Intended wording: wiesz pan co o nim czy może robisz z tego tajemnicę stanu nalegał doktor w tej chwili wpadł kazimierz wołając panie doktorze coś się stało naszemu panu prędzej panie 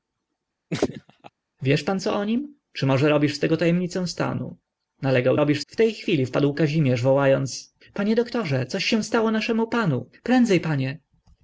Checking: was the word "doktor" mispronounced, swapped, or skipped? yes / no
yes